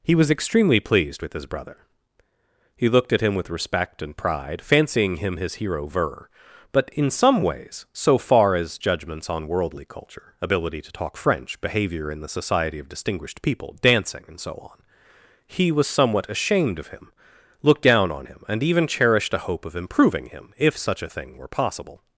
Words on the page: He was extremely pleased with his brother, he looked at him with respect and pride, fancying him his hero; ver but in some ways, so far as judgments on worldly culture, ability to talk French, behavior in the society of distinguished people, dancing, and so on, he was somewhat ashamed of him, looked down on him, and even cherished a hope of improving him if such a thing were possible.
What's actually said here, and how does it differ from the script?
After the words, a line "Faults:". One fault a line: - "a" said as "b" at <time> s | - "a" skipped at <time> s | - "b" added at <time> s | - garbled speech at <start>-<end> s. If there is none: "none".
He was extremely pleased with his brother, he looked at him with respect and pride, fancying him his hero; ver but in some ways, so far as judgments on worldly culture, ability to talk French, behavior in the society of distinguished people, dancing, and so on, he was somewhat ashamed of him, looked down on him, and even cherished a hope of improving him if such a thing were possible.
Faults:
none